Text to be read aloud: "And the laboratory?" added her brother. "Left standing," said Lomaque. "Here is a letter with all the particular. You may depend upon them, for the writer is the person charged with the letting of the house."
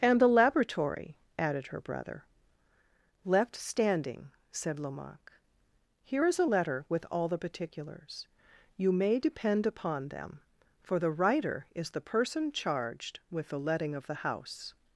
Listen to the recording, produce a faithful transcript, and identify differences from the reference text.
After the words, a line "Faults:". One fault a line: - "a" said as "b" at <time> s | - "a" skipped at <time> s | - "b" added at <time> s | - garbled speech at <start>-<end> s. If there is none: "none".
"And the laboratory?" added her brother. "Left standing," said Lomaque. "Here is a letter with all the particulars. You may depend upon them, for the writer is the person charged with the letting of the house."
Faults:
- "particular" said as "particulars" at 7.4 s